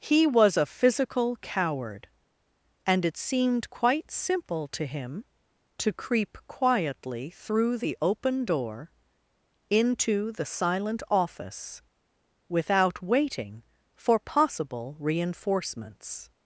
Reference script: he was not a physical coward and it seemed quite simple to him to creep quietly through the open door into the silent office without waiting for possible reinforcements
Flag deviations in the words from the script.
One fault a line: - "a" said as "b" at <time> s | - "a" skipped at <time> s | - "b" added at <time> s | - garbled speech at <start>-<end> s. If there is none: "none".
- "not" skipped at 0.6 s